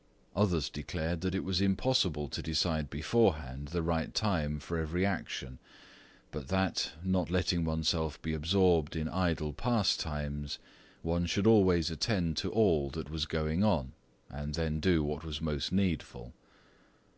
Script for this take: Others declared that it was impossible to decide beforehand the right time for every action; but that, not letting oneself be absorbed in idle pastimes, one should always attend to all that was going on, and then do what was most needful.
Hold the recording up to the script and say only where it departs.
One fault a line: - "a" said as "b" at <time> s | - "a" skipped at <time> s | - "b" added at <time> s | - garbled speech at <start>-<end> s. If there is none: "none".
none